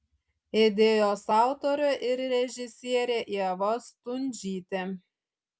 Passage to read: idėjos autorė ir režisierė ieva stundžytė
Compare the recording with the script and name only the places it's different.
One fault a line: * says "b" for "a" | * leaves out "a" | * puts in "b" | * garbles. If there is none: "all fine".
all fine